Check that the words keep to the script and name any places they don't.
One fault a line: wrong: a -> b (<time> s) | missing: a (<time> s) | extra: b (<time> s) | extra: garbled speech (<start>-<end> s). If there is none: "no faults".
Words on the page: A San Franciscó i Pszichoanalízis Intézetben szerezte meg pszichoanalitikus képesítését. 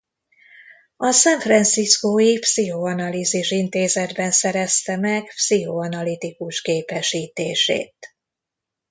no faults